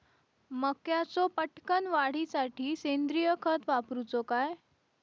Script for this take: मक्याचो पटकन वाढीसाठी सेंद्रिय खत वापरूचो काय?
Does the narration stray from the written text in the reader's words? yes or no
no